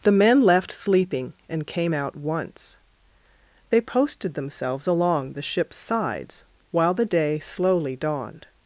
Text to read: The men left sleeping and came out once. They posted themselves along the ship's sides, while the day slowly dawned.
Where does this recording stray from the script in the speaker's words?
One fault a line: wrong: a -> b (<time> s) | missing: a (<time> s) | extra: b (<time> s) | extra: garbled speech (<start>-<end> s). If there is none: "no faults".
no faults